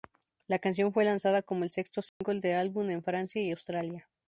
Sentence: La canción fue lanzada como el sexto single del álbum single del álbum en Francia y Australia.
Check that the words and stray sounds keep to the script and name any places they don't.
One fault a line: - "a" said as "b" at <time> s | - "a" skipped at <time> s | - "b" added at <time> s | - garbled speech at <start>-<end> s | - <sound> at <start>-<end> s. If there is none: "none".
- dropout at 2.1-2.2 s
- "single del álbum" skipped at 2.9 s